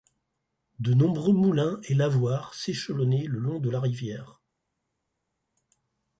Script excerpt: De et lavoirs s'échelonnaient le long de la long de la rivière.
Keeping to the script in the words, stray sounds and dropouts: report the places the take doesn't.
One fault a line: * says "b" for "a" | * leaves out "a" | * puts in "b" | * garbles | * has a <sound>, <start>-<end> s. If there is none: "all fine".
* puts in "nombreux moulins"
* leaves out "long de la"